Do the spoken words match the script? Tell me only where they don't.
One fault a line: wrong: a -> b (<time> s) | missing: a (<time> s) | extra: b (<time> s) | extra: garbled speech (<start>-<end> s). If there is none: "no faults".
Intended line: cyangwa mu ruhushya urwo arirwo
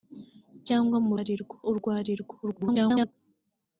wrong: ruhushya -> arirwo (1.2 s)
extra: garbled speech (2.4-3.1 s)